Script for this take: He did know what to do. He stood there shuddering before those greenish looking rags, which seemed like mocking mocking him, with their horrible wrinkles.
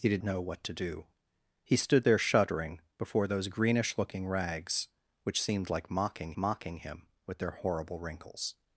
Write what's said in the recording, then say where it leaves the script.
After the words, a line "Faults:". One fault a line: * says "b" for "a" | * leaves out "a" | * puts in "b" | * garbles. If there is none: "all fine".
He did know what to do. He stood there shuddering before those greenish looking rags, which seemed like mocking mocking him, with their horrible wrinkles.
Faults:
all fine